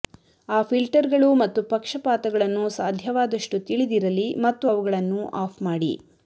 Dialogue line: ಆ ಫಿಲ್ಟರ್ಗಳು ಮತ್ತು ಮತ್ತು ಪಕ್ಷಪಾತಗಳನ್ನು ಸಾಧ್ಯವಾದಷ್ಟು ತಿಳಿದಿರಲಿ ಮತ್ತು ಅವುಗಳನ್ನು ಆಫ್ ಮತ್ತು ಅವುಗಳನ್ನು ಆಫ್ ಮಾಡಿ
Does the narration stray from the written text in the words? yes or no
yes